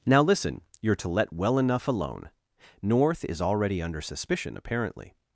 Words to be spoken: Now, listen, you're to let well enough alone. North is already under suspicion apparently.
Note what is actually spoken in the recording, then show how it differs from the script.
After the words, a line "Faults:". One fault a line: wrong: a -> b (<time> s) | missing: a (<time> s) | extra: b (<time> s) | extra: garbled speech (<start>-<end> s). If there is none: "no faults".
Now, listen, you're to let well enough alone. North is already under suspicion apparently.
Faults:
no faults